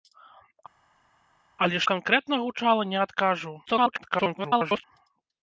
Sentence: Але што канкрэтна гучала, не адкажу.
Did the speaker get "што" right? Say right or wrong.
wrong